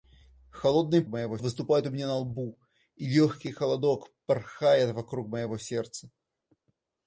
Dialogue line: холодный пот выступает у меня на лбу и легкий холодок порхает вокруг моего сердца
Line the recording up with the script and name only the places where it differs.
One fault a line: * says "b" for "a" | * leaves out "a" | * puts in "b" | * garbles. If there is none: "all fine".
* says "моего" for "пот"